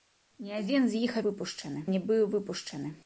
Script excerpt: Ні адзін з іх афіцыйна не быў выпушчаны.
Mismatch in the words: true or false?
true